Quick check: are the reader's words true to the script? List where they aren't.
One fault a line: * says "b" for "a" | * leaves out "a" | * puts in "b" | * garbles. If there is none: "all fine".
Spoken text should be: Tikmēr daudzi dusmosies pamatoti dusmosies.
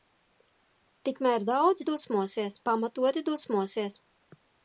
all fine